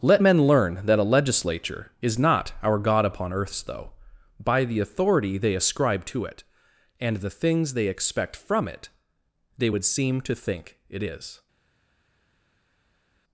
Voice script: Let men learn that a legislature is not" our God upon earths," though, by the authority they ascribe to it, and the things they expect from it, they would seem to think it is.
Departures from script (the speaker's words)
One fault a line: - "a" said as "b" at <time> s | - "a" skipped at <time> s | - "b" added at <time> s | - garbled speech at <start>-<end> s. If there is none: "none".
none